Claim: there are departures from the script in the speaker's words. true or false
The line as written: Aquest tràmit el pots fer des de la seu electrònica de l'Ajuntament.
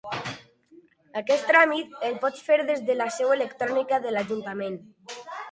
false